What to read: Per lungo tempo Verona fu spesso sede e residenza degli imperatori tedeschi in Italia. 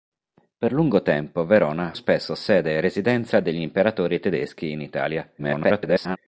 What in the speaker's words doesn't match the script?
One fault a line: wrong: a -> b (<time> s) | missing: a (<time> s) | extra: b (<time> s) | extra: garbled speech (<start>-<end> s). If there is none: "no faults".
missing: fu (1.9 s)
extra: garbled speech (5.4-6.2 s)